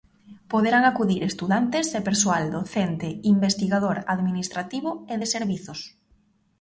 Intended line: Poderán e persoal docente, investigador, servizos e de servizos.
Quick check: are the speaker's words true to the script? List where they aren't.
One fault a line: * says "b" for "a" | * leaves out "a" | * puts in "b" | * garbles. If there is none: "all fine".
* puts in "acudir estudantes"
* says "administrativo" for "servizos"